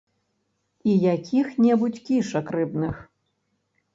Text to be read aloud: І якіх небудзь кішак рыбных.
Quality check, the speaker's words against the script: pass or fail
pass